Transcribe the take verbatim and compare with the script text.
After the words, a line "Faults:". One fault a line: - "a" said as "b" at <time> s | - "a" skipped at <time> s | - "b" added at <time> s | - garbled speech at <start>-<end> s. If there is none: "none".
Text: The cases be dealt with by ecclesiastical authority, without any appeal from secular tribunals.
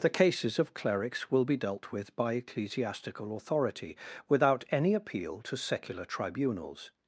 The cases of clerics will be dealt with by ecclesiastical authority, without any appeal to secular tribunals.
Faults:
- "of clerics will" added at 0.6 s
- "from" said as "to" at 5.4 s